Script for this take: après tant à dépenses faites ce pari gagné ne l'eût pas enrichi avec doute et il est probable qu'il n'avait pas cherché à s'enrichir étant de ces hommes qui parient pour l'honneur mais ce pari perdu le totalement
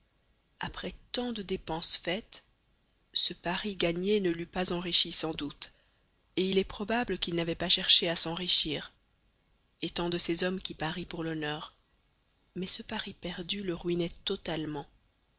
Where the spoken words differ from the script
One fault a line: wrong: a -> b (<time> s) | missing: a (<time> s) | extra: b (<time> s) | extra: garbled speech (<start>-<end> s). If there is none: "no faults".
wrong: à -> de (1.3 s)
wrong: avec -> sans (5.1 s)
extra: ruinait (13.7 s)